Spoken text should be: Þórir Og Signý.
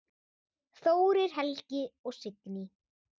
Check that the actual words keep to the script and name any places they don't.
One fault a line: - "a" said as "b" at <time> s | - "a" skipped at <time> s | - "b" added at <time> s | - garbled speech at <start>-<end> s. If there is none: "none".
- "Helgi" added at 1.4 s